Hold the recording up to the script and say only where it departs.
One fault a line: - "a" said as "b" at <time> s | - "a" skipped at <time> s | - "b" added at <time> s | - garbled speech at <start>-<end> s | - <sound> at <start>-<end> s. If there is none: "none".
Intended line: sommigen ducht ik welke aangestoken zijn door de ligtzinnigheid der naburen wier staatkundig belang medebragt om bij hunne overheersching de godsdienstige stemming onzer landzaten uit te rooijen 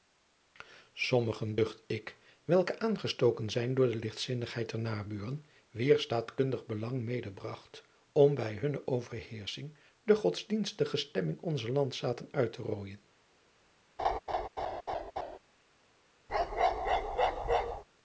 - laugh at 14.0-15.4 s
- bark at 16.3-17.8 s